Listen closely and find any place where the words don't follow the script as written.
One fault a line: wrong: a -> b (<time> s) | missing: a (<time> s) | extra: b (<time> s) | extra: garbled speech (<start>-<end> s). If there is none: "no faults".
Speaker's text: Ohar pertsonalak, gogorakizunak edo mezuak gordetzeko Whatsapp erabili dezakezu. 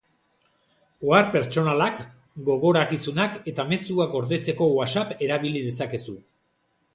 wrong: edo -> eta (3.5 s)